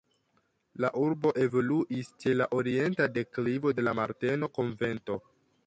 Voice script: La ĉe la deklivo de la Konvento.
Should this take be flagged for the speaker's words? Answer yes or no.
yes